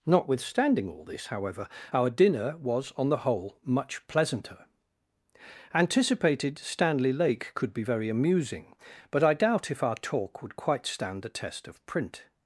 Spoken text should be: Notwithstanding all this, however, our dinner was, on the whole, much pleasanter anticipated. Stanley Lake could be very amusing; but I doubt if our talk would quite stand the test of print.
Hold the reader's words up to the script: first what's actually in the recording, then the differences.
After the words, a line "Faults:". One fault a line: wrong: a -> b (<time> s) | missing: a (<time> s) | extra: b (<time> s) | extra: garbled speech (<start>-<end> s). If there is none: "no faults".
Notwithstanding all this, however, our dinner was, on the whole, much pleasanter anticipated. Stanley Lake could be very amusing; but I doubt if our talk would quite stand the test of print.
Faults:
no faults